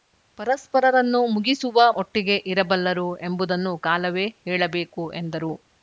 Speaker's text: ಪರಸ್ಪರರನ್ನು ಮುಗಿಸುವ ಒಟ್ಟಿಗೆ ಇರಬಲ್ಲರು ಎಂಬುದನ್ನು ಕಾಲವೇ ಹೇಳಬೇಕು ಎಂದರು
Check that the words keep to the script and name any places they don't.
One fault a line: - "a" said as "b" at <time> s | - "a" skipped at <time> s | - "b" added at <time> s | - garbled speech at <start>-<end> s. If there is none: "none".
none